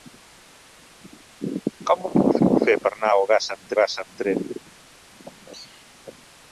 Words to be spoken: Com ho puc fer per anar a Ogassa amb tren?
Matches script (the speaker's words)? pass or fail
fail